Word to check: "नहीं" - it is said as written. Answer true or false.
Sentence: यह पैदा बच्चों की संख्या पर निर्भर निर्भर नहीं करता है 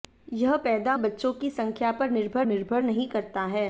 true